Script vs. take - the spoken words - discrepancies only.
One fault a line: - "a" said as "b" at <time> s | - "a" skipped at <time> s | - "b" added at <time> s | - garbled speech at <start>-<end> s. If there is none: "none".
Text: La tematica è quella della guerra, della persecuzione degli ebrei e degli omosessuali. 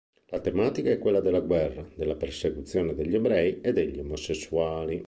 none